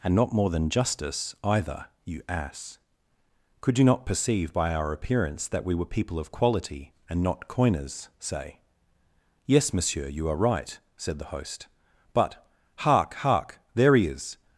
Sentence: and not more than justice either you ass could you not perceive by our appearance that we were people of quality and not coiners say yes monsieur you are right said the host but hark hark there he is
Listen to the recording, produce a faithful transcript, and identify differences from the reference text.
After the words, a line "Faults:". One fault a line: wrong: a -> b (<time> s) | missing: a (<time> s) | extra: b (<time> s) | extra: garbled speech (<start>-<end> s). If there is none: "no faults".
and not more than justice either you ass could you not perceive by our appearance that we were people of quality and not coiners say yes monsieur you are right said the host but hark hark there he is
Faults:
no faults